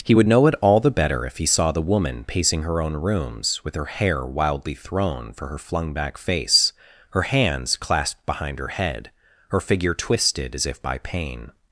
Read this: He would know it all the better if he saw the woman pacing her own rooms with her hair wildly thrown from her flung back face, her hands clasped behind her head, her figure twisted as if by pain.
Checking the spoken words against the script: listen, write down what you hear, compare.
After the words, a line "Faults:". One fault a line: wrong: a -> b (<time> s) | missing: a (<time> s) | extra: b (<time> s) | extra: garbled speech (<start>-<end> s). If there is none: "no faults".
He would know it all the better if he saw the woman pacing her own rooms with her hair wildly thrown for her flung back face, her hands clasped behind her head, her figure twisted as if by pain.
Faults:
wrong: from -> for (5.3 s)